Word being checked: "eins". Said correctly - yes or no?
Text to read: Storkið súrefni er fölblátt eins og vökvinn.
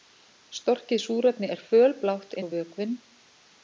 no